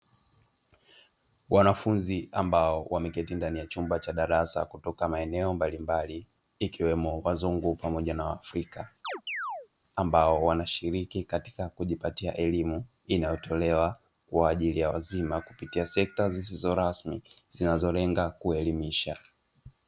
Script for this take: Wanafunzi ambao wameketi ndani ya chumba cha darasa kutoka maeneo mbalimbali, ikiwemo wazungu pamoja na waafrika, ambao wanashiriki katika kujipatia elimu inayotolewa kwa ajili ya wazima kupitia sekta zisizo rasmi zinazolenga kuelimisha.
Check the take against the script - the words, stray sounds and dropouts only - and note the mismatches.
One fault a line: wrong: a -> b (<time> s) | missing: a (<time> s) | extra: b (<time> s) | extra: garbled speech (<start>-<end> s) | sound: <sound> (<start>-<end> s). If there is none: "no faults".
sound: chirp (9.0-9.7 s)